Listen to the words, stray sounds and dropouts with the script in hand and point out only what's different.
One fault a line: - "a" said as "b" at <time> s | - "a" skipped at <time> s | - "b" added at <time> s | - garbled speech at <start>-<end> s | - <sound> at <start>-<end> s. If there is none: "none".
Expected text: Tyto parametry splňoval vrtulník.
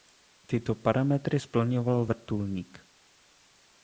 none